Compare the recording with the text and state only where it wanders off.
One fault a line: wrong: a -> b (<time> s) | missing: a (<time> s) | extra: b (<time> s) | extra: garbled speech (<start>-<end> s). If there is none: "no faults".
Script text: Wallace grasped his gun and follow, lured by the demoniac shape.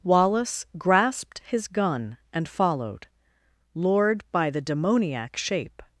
wrong: follow -> followed (2.5 s)